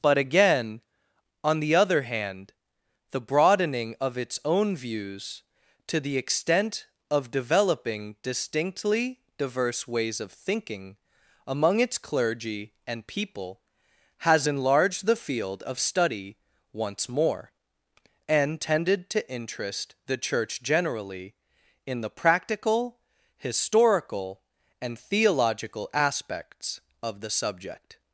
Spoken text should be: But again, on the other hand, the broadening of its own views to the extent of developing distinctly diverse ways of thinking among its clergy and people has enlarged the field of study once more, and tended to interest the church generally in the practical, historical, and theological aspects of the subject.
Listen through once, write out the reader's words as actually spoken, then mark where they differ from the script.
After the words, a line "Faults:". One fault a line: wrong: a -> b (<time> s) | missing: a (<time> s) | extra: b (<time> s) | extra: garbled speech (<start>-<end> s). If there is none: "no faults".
But again, on the other hand, the broadening of its own views to the extent of developing distinctly diverse ways of thinking among its clergy and people has enlarged the field of study once more, and tended to interest the church generally in the practical, historical, and theological aspects of the subject.
Faults:
no faults